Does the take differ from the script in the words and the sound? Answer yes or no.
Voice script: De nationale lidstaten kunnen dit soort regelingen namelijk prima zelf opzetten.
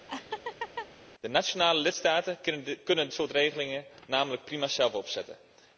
yes